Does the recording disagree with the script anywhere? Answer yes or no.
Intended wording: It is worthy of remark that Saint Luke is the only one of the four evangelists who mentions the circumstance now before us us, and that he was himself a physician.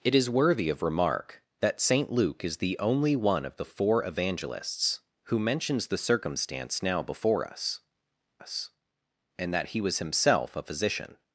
no